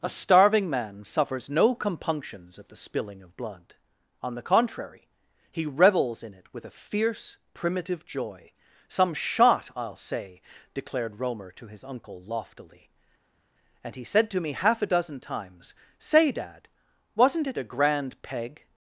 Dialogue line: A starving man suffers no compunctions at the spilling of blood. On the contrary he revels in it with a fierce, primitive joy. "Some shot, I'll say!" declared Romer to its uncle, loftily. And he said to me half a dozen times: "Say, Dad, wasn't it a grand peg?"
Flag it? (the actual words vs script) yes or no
yes